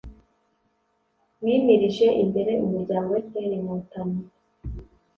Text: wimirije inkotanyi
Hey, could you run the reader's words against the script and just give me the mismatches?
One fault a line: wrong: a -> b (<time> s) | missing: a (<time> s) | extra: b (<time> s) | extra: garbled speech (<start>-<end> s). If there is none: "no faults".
extra: imbere umuryango fpr (2.2 s)